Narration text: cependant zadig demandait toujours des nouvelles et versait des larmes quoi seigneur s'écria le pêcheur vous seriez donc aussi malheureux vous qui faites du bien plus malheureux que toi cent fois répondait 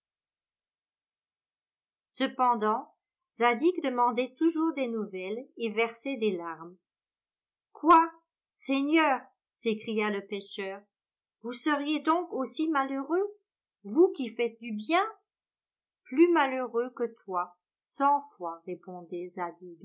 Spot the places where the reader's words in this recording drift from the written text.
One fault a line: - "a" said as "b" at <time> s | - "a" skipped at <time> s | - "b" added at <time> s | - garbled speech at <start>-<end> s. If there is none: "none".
none